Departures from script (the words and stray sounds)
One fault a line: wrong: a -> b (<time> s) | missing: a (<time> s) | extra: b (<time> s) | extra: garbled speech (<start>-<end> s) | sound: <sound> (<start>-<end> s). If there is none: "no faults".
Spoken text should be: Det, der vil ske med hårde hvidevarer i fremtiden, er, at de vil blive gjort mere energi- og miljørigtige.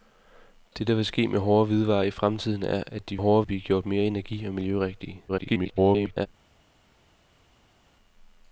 wrong: vil -> hårde (3.2 s)
extra: garbled speech (5.3-6.3 s)